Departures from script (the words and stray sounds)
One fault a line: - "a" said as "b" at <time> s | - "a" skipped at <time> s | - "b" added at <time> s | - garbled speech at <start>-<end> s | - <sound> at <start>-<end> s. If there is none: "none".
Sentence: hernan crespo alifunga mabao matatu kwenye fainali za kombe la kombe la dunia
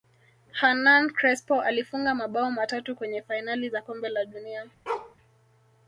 - "kombe la" skipped at 4.2 s
- bark at 4.9-5.2 s